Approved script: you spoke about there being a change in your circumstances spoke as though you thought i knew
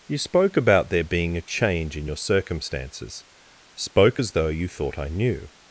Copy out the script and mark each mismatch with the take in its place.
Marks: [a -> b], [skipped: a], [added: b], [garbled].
you spoke about there being a change in your circumstances spoke as though you thought i knew